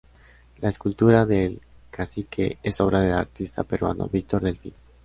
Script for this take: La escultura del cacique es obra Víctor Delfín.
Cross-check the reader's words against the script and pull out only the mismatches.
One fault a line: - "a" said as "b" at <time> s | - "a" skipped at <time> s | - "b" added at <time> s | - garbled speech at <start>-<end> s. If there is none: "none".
- "del artista peruano" added at 3.0 s